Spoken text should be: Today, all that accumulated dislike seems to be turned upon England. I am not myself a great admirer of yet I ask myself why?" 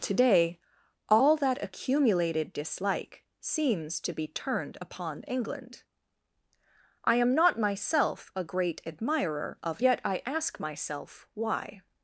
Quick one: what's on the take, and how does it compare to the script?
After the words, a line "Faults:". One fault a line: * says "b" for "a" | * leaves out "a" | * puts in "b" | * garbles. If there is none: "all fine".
Today, all that accumulated dislike seems to be turned upon England. I am not myself a great admirer of yet I ask myself why?"
Faults:
all fine